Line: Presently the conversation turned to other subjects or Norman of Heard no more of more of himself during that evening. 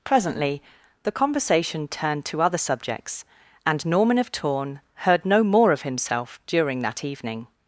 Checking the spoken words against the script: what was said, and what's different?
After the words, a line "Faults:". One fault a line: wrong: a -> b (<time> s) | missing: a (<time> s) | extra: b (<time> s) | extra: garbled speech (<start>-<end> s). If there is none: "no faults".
Presently the conversation turned to other subjects and Norman of Torn heard no more of himself during that evening.
Faults:
wrong: or -> and (3.6 s)
extra: Torn (4.3 s)
missing: more of (5.8 s)